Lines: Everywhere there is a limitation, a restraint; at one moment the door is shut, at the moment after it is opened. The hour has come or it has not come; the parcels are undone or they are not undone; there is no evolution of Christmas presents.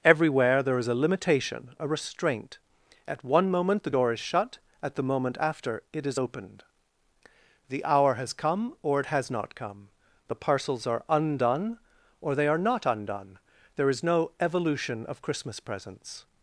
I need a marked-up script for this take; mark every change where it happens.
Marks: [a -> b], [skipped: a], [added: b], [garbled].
Everywhere there is a limitation, a restraint; at one moment the door is shut, at the moment after it is opened. The hour has come or it has not come; the parcels are undone or they are not undone; there is no evolution of Christmas presents.